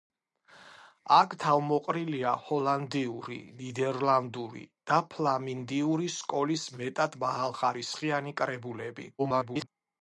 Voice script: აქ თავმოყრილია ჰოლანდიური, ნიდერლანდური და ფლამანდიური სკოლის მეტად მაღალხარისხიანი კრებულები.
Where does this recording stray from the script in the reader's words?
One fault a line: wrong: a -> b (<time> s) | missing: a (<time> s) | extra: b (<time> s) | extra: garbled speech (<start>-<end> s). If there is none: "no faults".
extra: garbled speech (9.2-9.7 s)